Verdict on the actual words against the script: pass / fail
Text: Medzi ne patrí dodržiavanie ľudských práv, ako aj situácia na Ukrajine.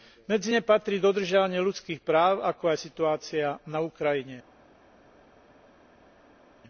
pass